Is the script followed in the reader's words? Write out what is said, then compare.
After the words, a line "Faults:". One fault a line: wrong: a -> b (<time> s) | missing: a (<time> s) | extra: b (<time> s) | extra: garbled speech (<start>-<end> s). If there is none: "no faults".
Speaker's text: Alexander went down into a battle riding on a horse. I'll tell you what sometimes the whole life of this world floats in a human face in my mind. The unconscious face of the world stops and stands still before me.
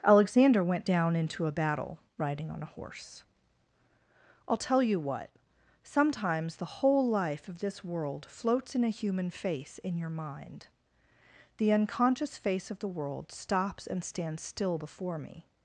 Alexander went down into a battle riding on a horse. I'll tell you what sometimes the whole life of this world floats in a human face in your mind. The unconscious face of the world stops and stands still before me.
Faults:
wrong: my -> your (10.0 s)